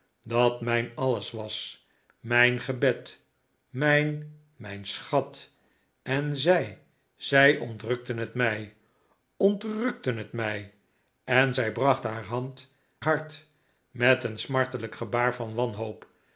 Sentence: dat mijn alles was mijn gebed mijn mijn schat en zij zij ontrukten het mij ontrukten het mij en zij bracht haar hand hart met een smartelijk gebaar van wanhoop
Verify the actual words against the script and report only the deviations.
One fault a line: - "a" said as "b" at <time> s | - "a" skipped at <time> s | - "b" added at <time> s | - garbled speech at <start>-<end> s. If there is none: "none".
none